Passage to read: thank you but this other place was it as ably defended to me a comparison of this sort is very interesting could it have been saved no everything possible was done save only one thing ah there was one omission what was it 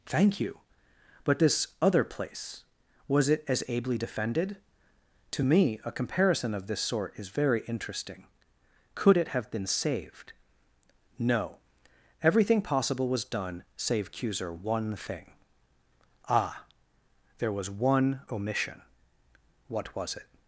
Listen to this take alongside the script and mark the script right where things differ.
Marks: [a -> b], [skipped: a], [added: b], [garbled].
thank you but this other place was it as ably defended to me a comparison of this sort is very interesting could it have been saved no everything possible was done save [only -> cuser] one thing ah there was one omission what was it